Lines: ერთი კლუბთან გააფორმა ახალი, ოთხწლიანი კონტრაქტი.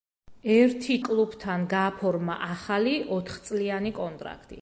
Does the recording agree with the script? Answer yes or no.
yes